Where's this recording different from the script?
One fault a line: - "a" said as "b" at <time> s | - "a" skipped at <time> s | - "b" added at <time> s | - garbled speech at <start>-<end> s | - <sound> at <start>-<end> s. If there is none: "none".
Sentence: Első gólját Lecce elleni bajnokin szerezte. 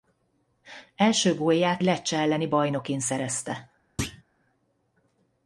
- thud at 4.0-4.2 s